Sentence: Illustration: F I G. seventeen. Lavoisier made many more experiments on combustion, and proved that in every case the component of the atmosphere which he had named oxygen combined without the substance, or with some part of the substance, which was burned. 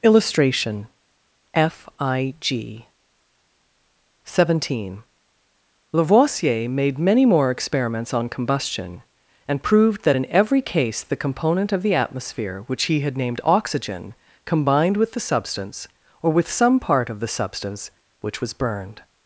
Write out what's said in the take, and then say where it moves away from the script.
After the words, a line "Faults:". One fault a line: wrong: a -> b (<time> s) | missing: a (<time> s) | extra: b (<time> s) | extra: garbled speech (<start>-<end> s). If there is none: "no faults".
Illustration: F I G. seventeen. Lavoisier made many more experiments on combustion, and proved that in every case the component of the atmosphere which he had named oxygen combined with the substance, or with some part of the substance, which was burned.
Faults:
wrong: without -> with (15.0 s)